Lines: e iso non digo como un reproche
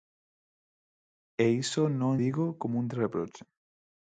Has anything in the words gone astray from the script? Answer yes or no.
no